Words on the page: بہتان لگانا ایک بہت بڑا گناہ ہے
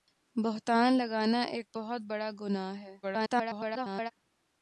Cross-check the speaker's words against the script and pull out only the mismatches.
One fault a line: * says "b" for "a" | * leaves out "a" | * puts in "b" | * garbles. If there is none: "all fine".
* garbles